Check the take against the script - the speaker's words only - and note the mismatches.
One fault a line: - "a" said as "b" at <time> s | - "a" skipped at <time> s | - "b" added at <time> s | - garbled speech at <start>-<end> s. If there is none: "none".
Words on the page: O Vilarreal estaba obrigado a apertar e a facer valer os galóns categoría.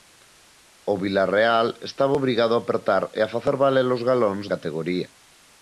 none